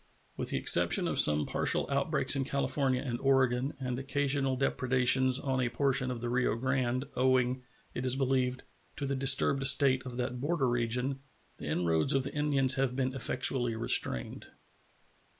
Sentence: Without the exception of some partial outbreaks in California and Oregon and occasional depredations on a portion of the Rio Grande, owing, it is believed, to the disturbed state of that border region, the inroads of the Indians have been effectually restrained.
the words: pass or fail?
fail